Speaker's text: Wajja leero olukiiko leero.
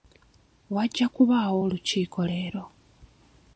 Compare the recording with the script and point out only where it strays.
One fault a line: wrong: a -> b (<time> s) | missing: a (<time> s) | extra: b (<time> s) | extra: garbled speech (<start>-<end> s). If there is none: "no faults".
wrong: leero -> kubaawo (1.1 s)